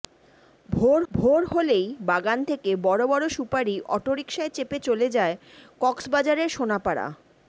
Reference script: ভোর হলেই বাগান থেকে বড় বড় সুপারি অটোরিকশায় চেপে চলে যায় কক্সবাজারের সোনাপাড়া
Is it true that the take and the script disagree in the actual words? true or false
true